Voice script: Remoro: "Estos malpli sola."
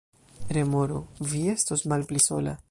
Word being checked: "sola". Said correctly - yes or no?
yes